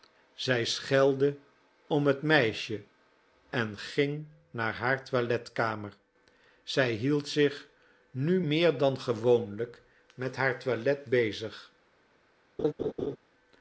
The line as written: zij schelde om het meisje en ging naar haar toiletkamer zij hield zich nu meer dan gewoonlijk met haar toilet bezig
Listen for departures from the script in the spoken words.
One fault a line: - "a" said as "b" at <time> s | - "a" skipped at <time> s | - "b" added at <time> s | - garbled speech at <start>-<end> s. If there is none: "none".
none